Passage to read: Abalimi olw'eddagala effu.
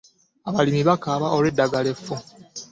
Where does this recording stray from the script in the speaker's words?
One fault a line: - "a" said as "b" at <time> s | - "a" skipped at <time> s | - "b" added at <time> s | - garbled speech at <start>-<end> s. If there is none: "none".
- "bakaaba" added at 0.9 s